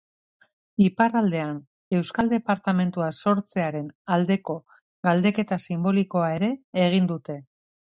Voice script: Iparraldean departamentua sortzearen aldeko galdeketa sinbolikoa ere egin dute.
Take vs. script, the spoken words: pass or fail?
fail